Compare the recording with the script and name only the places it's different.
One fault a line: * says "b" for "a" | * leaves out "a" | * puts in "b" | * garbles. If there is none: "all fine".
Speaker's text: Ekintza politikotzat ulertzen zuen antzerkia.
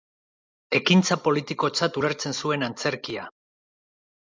all fine